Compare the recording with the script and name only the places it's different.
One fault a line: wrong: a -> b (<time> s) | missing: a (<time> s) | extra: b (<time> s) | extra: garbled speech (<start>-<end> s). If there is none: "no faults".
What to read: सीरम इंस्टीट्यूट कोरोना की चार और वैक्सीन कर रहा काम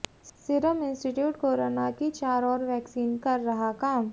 no faults